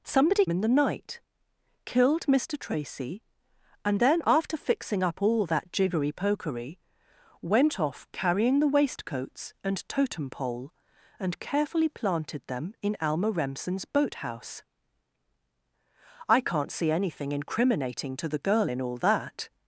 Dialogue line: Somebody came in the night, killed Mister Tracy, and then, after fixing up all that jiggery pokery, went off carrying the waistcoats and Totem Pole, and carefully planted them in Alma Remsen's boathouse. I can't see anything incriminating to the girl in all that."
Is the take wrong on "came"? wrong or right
wrong